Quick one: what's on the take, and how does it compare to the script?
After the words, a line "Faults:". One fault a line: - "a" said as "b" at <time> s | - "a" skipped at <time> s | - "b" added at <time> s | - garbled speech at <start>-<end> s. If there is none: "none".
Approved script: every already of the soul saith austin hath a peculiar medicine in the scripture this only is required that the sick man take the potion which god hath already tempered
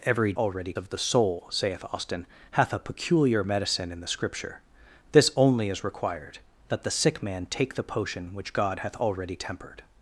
every already of the soul saith austin hath a peculiar medicine in the scripture this only is required that the sick man take the potion which god hath already tempered
Faults:
none